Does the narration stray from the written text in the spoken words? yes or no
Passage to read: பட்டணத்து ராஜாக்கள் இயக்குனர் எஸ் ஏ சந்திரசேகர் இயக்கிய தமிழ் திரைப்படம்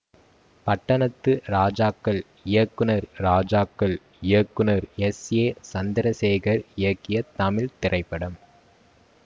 yes